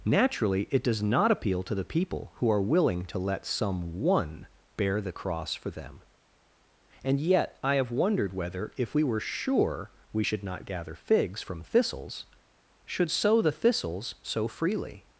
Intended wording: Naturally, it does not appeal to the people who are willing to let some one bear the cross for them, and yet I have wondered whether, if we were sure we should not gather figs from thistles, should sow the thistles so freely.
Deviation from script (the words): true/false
false